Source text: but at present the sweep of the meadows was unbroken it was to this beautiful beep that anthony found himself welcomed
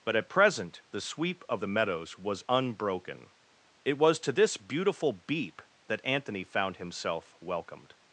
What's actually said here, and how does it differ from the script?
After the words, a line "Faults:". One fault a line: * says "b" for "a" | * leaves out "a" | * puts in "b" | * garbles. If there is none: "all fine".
but at present the sweep of the meadows was unbroken it was to this beautiful beep that anthony found himself welcomed
Faults:
all fine